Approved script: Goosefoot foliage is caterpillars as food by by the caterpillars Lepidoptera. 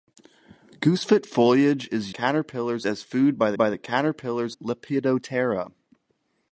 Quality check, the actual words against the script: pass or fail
pass